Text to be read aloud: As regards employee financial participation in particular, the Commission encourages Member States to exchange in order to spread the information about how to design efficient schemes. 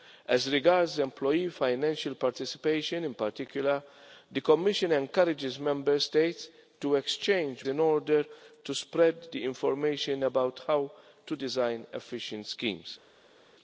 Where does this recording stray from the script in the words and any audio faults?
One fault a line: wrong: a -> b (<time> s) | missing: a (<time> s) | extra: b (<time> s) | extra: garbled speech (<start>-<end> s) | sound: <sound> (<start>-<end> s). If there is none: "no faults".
no faults